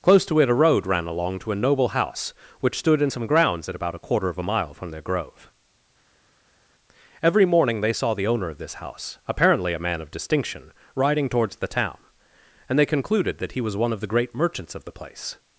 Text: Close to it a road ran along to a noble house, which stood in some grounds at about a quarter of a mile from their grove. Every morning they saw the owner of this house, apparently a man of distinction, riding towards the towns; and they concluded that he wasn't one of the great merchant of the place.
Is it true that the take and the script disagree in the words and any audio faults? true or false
true